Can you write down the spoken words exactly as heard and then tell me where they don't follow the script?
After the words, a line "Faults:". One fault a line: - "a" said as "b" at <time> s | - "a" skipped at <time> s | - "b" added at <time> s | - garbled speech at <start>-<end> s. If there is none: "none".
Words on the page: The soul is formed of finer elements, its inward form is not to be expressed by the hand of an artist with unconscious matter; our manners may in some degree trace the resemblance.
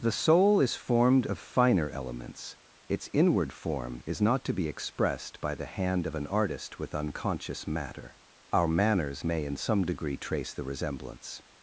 The soul is formed of finer elements, its inward form is not to be expressed by the hand of an artist with unconscious matter; our manners may in some degree trace the resemblance.
Faults:
none